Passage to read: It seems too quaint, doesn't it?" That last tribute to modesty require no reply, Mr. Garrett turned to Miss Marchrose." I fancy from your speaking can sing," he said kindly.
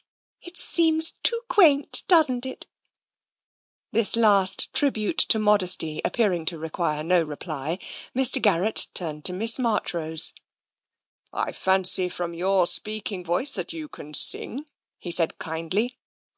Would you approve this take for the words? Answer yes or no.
no